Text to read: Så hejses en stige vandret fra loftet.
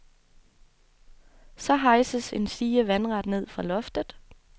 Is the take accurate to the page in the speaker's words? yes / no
no